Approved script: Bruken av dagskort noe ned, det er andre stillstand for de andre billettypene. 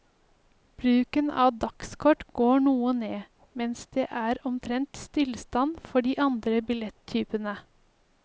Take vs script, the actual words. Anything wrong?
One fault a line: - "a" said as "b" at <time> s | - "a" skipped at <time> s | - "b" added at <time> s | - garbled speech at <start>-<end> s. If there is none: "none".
- "går" added at 2.4 s
- "mens" added at 3.6 s
- "andre" said as "omtrent" at 4.5 s